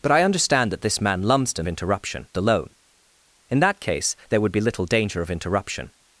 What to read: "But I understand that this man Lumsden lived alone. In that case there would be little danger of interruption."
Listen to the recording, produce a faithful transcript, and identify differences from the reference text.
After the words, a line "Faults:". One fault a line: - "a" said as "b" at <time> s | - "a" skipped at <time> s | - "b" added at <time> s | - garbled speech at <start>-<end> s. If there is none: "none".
"But I understand that this man Lumsden interruption alone. In that case there would be little danger of interruption."
Faults:
- "lived" said as "interruption" at 1.7 s